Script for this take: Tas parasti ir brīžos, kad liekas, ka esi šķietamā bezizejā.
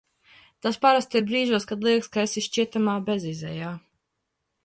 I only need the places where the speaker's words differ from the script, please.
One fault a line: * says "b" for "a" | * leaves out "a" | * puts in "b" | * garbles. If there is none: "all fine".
all fine